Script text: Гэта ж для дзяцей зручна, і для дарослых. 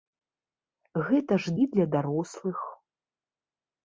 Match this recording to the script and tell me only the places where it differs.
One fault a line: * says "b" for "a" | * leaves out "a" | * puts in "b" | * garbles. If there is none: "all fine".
* leaves out "для дзяцей зручна"